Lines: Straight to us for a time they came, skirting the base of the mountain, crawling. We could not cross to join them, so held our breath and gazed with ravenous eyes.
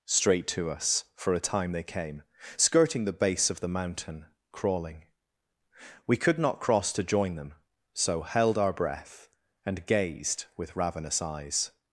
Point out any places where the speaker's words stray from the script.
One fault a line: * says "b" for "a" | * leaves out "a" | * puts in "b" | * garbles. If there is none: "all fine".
all fine